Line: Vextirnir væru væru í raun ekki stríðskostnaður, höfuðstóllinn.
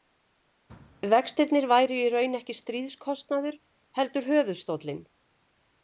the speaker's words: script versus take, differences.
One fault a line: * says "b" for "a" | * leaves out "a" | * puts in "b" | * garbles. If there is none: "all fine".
* leaves out "væru"
* puts in "heldur"